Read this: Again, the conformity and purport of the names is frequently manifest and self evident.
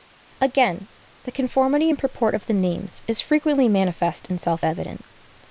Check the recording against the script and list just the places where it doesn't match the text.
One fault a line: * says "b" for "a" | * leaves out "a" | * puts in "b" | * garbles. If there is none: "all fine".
all fine